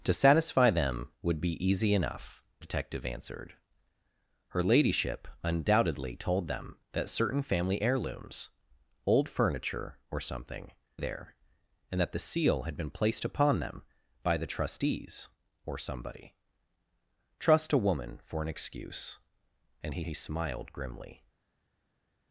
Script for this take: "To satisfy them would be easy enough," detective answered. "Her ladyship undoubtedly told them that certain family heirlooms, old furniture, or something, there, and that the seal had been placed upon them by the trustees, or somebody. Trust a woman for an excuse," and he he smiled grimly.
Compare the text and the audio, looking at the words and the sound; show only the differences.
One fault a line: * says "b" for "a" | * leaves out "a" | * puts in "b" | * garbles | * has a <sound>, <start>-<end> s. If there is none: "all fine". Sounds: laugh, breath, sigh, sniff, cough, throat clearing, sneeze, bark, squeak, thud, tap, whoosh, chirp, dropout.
all fine